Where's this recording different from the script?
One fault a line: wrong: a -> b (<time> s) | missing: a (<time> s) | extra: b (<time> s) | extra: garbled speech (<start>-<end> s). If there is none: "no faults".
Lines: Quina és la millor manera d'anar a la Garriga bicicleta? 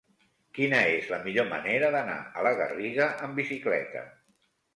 extra: amb (3.3 s)